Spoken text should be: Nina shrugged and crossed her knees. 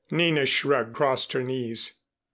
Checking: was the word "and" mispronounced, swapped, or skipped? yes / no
yes